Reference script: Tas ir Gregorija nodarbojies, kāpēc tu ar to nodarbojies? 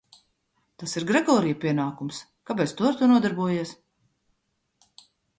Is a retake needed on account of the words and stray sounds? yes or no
yes